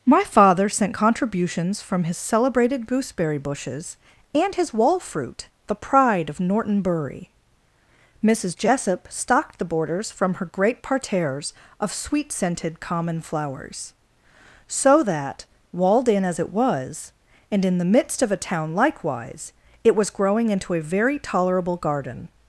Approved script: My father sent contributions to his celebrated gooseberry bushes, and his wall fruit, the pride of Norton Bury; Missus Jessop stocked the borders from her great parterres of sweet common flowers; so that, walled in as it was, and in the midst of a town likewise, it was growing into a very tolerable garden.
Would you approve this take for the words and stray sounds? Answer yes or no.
no